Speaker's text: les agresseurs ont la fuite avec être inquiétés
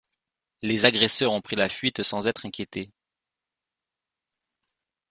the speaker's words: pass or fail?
fail